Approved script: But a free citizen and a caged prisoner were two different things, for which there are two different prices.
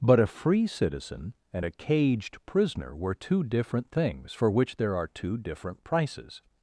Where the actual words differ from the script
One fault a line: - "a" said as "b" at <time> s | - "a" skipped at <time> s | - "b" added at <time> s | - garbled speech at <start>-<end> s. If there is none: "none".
none